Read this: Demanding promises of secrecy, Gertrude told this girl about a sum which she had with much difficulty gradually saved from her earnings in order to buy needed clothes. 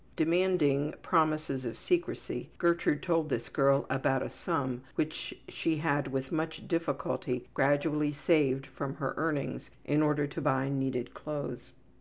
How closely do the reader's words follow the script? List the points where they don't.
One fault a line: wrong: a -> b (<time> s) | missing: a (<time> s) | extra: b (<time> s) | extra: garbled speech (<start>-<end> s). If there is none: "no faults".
no faults